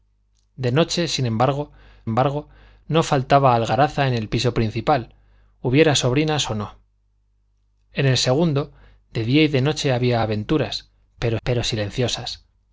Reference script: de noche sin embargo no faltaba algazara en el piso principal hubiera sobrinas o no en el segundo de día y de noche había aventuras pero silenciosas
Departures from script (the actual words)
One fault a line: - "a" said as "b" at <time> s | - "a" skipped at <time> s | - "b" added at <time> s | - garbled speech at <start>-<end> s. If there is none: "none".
- "embargo" added at 2.0 s
- "pero" added at 11.4 s